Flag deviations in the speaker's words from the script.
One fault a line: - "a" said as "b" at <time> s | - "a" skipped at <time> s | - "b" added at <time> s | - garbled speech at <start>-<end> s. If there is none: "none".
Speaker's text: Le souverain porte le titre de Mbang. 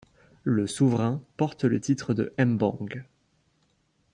none